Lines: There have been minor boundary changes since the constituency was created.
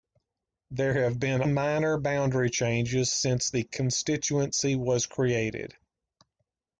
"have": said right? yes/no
yes